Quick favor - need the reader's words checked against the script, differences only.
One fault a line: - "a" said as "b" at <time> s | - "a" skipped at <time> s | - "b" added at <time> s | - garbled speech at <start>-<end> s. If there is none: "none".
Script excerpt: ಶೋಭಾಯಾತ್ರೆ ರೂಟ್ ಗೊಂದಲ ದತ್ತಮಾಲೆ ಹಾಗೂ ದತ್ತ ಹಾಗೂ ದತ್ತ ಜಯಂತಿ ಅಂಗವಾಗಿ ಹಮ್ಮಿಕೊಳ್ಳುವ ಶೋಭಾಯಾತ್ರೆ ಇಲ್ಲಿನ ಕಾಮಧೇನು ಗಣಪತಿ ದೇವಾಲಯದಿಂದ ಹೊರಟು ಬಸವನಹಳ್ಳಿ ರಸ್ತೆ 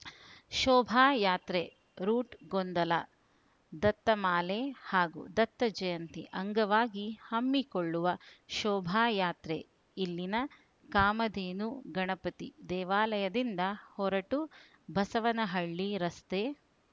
- "ಹಾಗೂ ದತ್ತ" skipped at 5.7 s